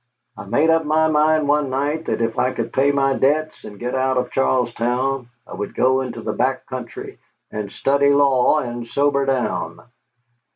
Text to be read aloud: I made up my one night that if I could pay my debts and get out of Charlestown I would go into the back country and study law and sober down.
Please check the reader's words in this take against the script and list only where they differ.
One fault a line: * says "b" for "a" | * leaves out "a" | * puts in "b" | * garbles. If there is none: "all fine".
* puts in "mind"